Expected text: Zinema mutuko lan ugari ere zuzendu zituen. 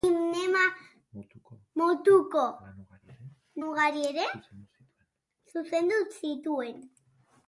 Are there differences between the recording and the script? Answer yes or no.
yes